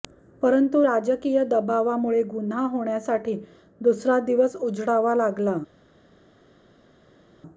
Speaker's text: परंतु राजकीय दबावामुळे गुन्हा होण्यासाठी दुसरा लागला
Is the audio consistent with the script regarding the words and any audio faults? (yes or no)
no